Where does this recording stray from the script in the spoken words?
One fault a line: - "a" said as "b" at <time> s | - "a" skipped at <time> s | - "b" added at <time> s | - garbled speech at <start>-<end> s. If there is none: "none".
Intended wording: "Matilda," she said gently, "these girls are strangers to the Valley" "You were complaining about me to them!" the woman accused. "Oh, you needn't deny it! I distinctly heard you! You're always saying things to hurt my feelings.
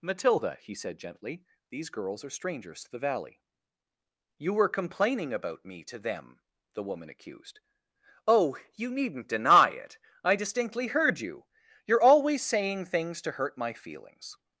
- "she" said as "he" at 0.6 s